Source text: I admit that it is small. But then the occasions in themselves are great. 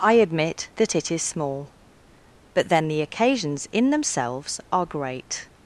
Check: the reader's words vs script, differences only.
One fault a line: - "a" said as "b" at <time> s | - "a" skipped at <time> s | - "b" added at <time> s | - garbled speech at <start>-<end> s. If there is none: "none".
none